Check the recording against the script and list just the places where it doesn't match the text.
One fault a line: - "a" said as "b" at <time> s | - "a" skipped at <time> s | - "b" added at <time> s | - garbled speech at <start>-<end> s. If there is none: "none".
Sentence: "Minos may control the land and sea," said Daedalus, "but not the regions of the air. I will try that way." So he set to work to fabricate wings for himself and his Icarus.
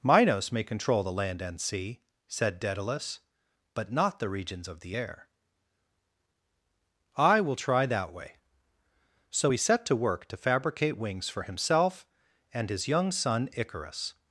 - "young son" added at 12.9 s